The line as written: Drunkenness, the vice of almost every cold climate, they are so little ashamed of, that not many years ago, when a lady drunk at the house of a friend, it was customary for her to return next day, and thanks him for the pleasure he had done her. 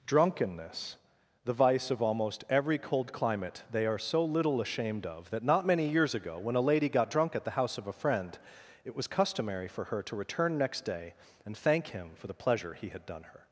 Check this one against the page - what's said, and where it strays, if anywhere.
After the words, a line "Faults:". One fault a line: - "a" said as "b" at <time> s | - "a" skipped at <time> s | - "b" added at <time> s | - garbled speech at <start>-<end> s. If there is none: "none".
Drunkenness, the vice of almost every cold climate, they are so little ashamed of, that not many years ago, when a lady got drunk at the house of a friend, it was customary for her to return next day, and thank him for the pleasure he had done her.
Faults:
- "got" added at 6.9 s
- "thanks" said as "thank" at 11.6 s